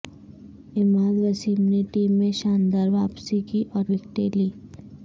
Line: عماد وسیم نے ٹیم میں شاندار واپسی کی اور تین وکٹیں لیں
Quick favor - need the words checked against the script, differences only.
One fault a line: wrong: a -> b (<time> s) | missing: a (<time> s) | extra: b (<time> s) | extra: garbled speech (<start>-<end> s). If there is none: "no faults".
missing: تین (3.8 s)